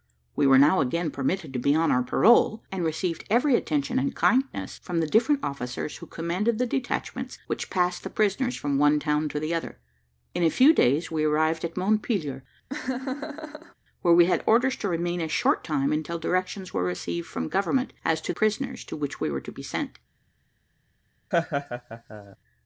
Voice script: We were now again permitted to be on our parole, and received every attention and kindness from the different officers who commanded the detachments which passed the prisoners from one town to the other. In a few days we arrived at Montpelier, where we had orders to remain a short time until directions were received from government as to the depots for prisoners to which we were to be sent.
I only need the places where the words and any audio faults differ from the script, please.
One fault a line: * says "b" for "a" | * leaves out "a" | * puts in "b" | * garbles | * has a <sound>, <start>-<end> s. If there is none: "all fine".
* has a laugh, 12.7-13.7 s
* leaves out "the depots for"
* has a laugh, 21.3-22.4 s